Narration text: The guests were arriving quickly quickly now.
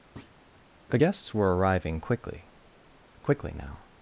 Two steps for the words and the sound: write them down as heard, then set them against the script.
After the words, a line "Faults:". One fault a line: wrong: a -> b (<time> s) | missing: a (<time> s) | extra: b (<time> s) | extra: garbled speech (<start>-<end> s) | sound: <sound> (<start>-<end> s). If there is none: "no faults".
The guests were arriving quickly quickly now.
Faults:
sound: thud (0.2-0.4 s)